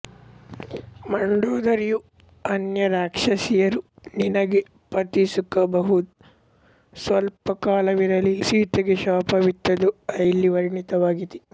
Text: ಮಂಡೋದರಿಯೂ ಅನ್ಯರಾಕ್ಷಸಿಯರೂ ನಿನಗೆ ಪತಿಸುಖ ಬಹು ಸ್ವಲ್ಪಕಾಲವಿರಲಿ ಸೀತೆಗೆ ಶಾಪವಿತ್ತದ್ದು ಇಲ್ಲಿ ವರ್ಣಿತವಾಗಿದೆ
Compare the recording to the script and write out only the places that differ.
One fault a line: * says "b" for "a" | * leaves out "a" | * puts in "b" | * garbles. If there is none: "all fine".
all fine